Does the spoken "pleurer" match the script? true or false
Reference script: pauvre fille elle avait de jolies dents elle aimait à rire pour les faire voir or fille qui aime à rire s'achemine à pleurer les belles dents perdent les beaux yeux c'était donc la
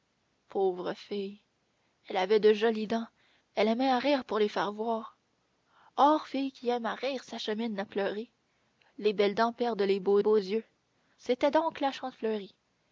true